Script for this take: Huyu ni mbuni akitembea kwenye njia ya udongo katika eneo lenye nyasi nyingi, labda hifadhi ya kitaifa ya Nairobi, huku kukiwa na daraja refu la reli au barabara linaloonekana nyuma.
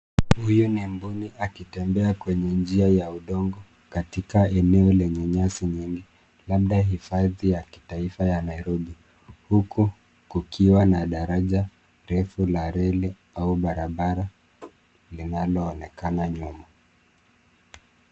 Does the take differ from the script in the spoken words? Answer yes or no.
no